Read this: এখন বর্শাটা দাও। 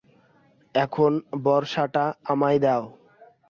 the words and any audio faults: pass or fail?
fail